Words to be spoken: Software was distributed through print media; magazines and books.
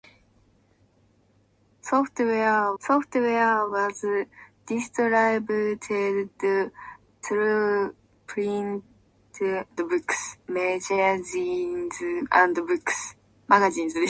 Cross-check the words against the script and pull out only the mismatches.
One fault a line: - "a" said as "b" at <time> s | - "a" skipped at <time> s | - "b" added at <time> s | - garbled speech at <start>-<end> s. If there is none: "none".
- "software" added at 2.8 s
- "media" said as "books" at 9.8 s